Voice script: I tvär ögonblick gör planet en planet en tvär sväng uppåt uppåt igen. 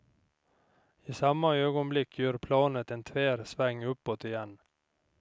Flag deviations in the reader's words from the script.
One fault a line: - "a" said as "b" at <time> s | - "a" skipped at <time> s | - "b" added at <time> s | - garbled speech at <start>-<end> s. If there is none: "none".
- "tvär" said as "samma" at 1.1 s
- "planet en" skipped at 3.0 s
- "uppåt" skipped at 4.2 s